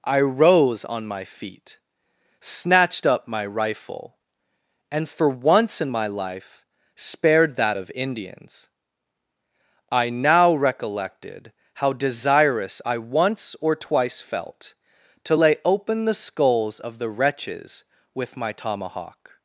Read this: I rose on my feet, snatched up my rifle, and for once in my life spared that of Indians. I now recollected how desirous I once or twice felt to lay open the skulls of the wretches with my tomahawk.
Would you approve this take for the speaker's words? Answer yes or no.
yes